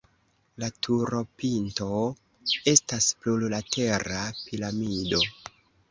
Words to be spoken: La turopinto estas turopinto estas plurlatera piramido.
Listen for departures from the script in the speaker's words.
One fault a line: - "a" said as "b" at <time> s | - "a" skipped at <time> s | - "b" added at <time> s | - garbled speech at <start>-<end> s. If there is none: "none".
- "turopinto estas" skipped at 3.1 s